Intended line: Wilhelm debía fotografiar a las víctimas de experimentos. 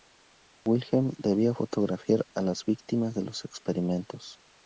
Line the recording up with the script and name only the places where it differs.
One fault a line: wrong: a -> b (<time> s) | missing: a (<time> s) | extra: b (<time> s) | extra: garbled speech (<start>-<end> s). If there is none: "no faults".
extra: los (3.2 s)